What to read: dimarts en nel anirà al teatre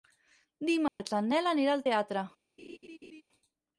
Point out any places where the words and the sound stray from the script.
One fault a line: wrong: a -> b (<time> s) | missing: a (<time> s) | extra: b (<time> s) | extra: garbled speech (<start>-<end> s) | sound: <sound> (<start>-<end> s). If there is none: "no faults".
sound: dropout (0.9-1.0 s)
sound: laugh (2.6-3.2 s)